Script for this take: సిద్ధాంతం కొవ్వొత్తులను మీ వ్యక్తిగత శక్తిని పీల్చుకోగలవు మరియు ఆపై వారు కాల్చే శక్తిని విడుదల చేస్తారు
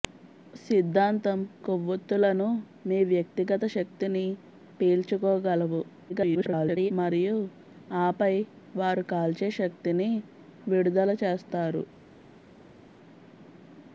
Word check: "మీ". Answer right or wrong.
right